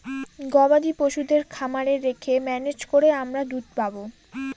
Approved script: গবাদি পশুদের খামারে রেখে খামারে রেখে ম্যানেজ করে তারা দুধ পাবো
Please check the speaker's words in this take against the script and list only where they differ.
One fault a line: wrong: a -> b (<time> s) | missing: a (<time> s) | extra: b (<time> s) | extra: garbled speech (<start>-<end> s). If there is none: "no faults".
missing: খামারে রেখে (2.3 s)
wrong: তারা -> আমরা (3.2 s)